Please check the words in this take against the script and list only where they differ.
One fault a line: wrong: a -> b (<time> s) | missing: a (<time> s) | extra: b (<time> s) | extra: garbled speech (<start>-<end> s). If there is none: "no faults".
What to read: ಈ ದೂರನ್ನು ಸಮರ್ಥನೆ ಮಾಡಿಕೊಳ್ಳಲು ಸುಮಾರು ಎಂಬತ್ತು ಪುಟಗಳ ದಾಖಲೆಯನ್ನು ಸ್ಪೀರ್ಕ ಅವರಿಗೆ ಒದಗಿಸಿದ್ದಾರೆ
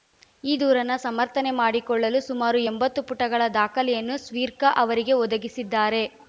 no faults